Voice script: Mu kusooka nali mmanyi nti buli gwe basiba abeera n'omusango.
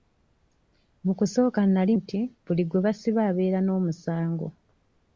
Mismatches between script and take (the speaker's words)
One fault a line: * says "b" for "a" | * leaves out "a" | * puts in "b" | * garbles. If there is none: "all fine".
* leaves out "mmanyi"